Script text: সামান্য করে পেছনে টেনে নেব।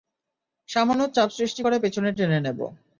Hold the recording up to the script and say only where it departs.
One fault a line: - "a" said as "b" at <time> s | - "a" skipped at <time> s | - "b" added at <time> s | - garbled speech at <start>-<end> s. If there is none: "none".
- "চাপ সৃষ্টি" added at 1.1 s